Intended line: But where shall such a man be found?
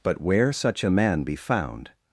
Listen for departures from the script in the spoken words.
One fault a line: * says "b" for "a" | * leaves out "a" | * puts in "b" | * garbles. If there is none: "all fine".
* leaves out "shall"